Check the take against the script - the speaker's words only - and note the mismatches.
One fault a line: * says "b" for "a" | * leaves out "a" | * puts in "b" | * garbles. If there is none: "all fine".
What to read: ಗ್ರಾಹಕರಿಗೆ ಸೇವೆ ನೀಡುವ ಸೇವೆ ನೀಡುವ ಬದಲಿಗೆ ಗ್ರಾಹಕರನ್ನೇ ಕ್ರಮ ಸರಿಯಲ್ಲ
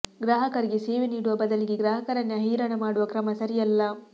* says "ಬದಲಿಗೆ ಗ್ರಾಹಕರನ್ನೇ ಹೈರಾಣ ಮಾಡುವ" for "ಸೇವೆ ನೀಡುವ ಬದಲಿಗೆ ಗ್ರಾಹಕರನ್ನೇ"